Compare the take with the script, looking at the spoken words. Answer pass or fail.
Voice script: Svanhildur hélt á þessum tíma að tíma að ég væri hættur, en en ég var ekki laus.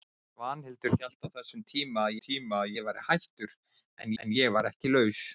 pass